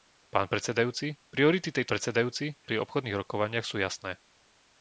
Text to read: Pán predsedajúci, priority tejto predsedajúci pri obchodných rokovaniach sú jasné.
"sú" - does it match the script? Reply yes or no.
yes